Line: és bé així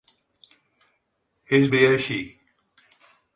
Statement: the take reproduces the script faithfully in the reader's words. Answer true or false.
true